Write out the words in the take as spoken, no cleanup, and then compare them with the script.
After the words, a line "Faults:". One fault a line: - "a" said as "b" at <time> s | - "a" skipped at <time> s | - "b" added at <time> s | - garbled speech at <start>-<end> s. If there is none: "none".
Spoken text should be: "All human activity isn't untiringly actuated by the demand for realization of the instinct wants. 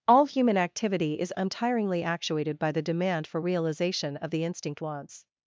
"All human activity is untiringly actuated by the demand for realization of the instinct wants.
Faults:
- "isn't" said as "is" at 1.2 s